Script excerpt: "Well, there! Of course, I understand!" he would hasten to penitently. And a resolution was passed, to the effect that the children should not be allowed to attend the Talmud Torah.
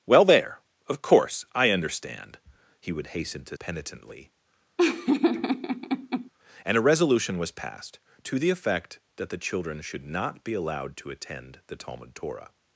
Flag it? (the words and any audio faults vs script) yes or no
yes